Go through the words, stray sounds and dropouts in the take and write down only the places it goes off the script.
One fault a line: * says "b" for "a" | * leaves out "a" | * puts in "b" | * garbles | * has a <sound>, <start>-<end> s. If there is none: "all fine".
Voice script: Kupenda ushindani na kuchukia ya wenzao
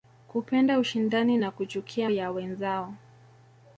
all fine